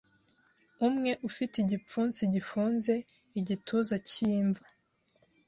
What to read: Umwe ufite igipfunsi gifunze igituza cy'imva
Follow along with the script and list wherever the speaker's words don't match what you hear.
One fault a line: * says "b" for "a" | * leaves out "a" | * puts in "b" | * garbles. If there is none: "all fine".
all fine